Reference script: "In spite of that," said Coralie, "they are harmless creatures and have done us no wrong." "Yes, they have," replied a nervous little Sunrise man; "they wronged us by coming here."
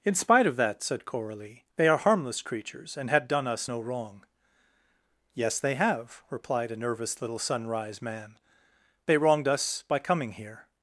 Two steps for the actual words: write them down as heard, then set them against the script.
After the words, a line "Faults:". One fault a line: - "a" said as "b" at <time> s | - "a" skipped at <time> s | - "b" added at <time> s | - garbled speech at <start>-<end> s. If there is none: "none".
"In spite of that," said Coralie, "they are harmless creatures and had done us no wrong." "Yes, they have," replied a nervous little Sunrise man; "they wronged us by coming here."
Faults:
- "have" said as "had" at 3.1 s